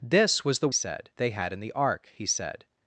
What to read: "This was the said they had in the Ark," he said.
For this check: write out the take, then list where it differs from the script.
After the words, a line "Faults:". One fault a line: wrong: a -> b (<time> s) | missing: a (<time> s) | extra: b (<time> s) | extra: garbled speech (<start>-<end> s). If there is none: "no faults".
"This was the said they had in the Ark," he said.
Faults:
no faults